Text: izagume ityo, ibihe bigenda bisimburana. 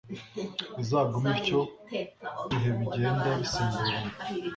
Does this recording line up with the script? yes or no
yes